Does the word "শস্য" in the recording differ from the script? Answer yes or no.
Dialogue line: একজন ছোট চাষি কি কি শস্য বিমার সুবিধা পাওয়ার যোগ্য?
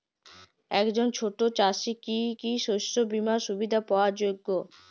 no